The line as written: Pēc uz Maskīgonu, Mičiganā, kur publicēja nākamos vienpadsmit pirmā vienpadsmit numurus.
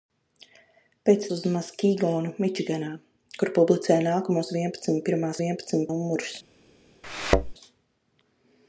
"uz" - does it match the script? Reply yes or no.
yes